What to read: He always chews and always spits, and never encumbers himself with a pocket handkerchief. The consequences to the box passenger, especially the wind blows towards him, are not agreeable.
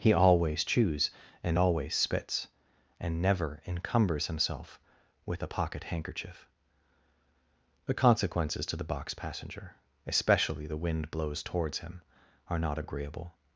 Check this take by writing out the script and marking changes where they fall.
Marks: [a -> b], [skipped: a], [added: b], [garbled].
He always chews and always spits, and never encumbers himself with a pocket handkerchief. The consequences to the box passenger, especially the wind blows towards him, are not agreeable.